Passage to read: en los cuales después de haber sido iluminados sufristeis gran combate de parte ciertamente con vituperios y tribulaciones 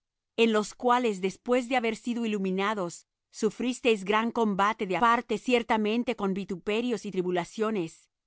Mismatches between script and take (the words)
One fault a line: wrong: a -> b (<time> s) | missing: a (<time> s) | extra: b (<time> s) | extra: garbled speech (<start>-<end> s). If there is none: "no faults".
no faults